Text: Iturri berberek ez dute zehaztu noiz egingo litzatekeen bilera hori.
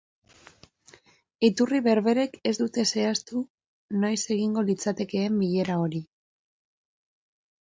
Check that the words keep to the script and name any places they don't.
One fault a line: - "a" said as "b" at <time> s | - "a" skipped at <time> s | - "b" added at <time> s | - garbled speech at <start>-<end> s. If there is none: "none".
none